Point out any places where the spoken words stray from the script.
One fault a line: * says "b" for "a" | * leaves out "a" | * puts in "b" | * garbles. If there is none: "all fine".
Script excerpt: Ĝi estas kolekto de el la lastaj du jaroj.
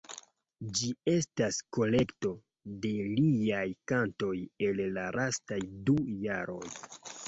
* puts in "liaj kantoj"